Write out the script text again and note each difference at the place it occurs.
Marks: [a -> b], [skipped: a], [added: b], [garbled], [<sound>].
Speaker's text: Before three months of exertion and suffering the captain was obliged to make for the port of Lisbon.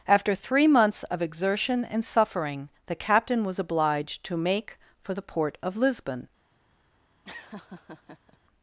[Before -> After] three months of exertion and suffering the captain was obliged to make for the port of Lisbon. [laugh]